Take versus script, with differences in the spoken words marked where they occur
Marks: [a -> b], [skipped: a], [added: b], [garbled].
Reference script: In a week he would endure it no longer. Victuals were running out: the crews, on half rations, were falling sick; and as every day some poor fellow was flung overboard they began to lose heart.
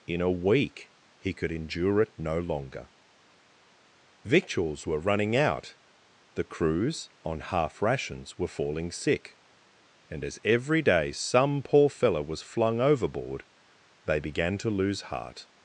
In a week he [would -> could] endure it no longer. Victuals were running out: the crews, on half rations, were falling sick; and as every day some poor fellow was flung overboard they began to lose heart.